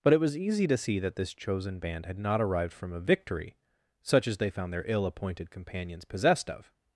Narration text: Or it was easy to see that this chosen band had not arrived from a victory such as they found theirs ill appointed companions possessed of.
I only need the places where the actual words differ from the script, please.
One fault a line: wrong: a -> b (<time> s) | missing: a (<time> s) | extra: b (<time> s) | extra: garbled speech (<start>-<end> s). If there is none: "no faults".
wrong: Or -> But (0.0 s)
wrong: theirs -> their (4.7 s)